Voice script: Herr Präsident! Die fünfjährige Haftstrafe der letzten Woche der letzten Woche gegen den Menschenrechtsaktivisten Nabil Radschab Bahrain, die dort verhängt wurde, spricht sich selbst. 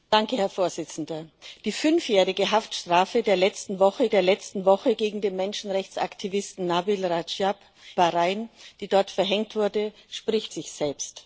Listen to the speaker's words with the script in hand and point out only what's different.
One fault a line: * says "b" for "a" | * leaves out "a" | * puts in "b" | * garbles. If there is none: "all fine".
all fine